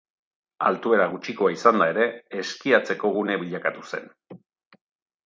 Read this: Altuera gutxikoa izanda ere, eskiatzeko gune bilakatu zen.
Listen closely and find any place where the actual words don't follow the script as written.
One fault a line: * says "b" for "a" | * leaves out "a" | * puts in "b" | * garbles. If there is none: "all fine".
all fine